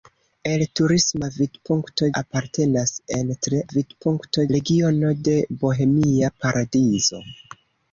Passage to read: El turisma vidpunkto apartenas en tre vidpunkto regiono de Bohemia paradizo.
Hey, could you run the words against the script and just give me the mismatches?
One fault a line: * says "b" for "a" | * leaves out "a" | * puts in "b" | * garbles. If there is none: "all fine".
all fine